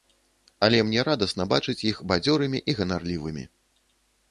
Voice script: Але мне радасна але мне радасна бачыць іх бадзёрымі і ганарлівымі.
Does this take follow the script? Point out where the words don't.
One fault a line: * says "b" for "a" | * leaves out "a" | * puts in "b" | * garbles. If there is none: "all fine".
* leaves out "але мне радасна"